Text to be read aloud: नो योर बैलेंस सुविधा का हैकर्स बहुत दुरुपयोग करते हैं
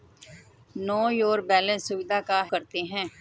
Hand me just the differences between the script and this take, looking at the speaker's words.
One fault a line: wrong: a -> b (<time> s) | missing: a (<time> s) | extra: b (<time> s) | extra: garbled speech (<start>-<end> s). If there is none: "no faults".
missing: हैकर्स बहुत दुरुपयोग (2.4 s)